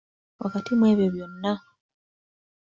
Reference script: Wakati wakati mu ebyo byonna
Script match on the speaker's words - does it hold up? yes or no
no